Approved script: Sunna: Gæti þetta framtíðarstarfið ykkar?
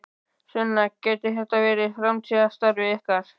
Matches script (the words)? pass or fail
fail